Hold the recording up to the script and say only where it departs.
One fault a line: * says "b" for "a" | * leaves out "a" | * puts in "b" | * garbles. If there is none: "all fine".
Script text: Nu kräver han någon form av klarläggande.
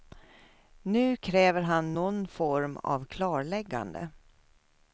all fine